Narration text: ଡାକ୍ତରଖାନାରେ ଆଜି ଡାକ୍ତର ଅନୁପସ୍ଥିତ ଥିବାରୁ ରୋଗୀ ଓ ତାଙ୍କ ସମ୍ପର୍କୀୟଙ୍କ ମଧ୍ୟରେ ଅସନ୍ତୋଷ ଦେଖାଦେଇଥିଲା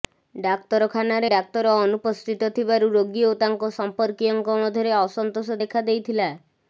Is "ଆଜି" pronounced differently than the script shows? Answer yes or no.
yes